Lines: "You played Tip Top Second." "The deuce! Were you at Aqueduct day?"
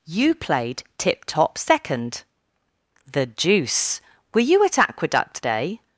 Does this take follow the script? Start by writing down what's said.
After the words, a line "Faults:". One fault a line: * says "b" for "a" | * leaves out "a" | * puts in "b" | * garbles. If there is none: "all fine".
"You played Tip Top Second." "The deuce! Were you at Aqueduct day?"
Faults:
all fine